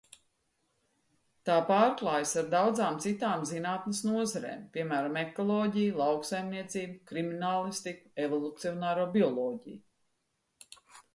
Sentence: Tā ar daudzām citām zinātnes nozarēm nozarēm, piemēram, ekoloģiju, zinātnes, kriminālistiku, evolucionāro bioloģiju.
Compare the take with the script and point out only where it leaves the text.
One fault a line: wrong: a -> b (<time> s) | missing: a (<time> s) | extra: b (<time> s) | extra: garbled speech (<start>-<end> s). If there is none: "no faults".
extra: pārklājas (1.7 s)
missing: nozarēm (4.6 s)
wrong: zinātnes -> lauksaimniecību (6.0 s)